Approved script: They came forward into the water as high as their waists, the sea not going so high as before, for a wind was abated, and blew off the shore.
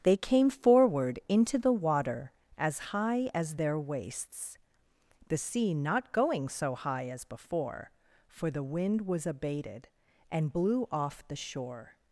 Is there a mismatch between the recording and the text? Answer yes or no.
yes